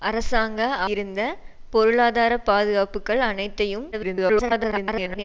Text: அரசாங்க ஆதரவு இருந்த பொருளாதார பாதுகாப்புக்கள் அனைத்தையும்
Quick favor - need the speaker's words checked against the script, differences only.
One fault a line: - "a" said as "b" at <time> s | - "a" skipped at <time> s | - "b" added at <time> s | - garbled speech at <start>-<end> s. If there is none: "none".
- "ஆதரவு" skipped at 0.6 s
- garbled speech at 3.9-5.2 s